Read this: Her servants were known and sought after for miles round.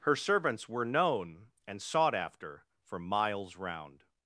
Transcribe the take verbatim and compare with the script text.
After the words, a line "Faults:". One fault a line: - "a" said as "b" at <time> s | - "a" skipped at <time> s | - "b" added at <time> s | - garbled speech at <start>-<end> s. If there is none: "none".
Her servants were known and sought after for miles round.
Faults:
none